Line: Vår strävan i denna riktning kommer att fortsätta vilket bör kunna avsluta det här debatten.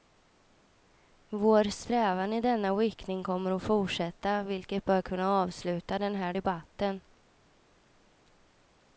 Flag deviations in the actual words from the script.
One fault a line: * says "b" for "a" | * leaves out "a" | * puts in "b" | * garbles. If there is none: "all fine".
* says "den" for "det"